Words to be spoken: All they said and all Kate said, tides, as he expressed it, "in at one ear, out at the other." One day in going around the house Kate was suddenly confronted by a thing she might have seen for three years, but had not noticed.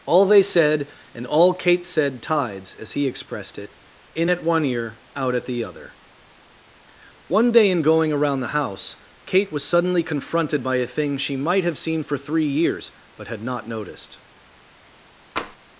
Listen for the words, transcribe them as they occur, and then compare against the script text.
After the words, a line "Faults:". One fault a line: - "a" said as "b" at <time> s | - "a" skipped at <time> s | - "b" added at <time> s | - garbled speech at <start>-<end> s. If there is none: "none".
All they said and all Kate said, tides, as he expressed it, "in at one ear, out at the other." One day in going around the house Kate was suddenly confronted by a thing she might have seen for three years, but had not noticed.
Faults:
none